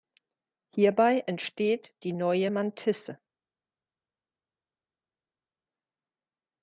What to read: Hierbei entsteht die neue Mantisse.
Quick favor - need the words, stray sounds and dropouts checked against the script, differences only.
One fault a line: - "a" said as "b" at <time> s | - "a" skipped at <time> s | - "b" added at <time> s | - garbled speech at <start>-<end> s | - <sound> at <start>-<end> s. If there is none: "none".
none